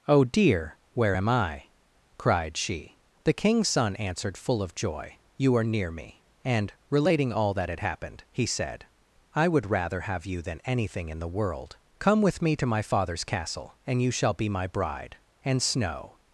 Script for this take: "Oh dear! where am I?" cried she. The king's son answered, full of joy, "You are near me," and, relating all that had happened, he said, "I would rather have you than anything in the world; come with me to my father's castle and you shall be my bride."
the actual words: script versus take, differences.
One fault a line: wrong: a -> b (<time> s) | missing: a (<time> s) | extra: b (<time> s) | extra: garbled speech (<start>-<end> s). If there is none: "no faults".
extra: And Snow (15.4 s)